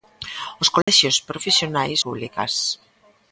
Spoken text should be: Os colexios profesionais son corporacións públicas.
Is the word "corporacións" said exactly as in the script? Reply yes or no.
no